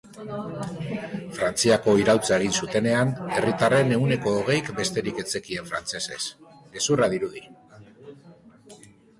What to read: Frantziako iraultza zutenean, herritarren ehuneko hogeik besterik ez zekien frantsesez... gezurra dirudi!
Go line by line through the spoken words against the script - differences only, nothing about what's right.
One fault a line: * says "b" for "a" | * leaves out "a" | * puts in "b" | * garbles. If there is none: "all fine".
* puts in "egin"